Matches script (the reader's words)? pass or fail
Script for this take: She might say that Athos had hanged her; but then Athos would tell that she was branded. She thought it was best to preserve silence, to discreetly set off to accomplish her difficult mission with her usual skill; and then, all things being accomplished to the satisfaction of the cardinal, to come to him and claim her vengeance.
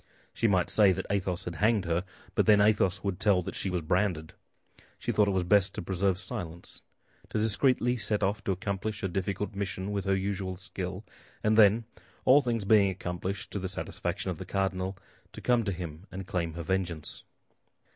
pass